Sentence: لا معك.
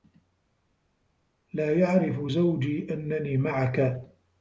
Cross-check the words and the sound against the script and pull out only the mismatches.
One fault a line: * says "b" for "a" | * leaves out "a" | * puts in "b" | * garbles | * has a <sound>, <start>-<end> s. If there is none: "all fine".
* puts in "يعرف زوجي أنّني"